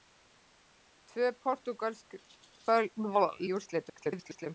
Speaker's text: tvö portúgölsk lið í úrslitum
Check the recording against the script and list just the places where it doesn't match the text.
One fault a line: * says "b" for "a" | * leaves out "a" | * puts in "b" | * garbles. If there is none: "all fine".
* leaves out "lið"
* garbles